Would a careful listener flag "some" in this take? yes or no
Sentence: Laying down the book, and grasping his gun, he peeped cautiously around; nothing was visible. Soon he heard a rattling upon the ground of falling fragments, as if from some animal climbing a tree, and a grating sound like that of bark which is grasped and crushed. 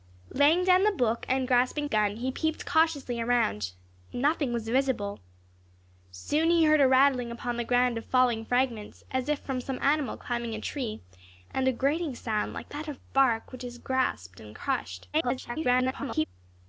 no